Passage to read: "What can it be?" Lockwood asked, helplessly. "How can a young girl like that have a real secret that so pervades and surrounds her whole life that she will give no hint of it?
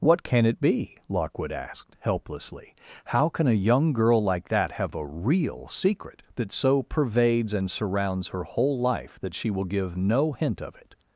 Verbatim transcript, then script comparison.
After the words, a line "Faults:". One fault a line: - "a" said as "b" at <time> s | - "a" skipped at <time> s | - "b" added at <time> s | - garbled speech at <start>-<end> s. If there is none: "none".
"What can it be?" Lockwood asked, helplessly. "How can a young girl like that have a real secret that so pervades and surrounds her whole life that she will give no hint of it?
Faults:
none